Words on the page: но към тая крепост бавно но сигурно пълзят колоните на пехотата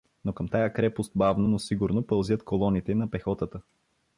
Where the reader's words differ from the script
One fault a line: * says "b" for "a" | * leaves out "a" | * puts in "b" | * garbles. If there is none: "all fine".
all fine